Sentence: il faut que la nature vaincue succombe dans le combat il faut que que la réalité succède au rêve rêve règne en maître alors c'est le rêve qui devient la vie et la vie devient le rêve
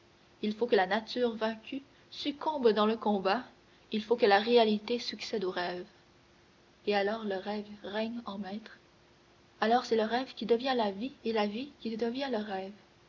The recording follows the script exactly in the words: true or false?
false